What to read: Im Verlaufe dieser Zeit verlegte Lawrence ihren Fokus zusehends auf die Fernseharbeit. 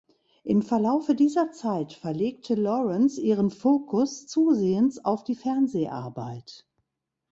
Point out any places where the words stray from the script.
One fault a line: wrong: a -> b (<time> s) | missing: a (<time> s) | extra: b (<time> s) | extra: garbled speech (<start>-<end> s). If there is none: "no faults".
no faults